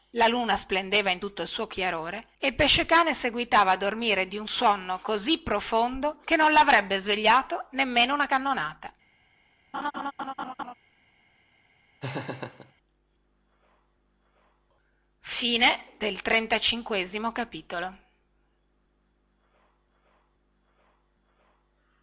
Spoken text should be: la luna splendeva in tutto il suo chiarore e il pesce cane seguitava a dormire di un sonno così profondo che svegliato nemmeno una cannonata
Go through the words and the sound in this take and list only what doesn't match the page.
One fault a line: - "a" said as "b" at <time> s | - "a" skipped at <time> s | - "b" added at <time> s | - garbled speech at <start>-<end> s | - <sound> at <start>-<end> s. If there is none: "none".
- "non lavrebbe" added at 6.4 s
- laugh at 9.7-10.7 s
- laugh at 12.0-12.7 s